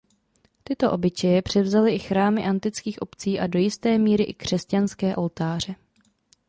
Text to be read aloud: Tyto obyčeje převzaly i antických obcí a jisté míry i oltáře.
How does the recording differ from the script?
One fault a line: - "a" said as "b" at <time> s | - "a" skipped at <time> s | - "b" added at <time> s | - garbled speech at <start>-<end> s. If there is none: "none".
- "chrámy" added at 2.0 s
- "do" added at 3.5 s
- "křesťanské" added at 4.3 s